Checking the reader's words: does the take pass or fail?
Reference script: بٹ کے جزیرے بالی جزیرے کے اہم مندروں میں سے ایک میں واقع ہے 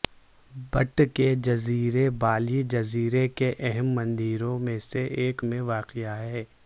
pass